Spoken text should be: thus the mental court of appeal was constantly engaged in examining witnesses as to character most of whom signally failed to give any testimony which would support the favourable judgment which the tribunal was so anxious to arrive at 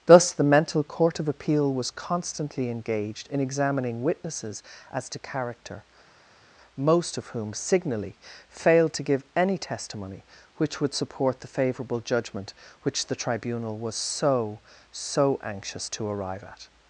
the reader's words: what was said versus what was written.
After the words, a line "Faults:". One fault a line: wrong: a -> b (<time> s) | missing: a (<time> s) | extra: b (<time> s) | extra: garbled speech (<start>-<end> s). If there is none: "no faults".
thus the mental court of appeal was constantly engaged in examining witnesses as to character most of whom signally failed to give any testimony which would support the favourable judgment which the tribunal was so so anxious to arrive at
Faults:
extra: so (14.9 s)